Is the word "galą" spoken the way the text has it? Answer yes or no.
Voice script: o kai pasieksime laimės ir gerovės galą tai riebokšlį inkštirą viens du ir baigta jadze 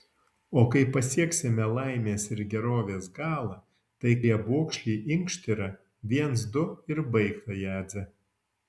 yes